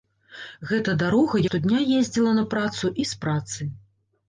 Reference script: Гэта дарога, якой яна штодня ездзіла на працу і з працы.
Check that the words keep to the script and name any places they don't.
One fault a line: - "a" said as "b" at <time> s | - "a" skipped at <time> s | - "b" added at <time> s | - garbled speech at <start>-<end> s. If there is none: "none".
- "якой яна" skipped at 1.4 s